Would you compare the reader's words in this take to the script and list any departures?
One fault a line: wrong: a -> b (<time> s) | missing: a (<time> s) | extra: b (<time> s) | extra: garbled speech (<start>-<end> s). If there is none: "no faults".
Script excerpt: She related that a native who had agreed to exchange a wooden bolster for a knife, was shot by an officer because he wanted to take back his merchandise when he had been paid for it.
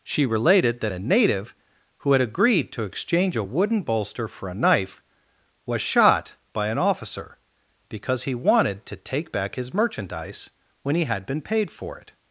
no faults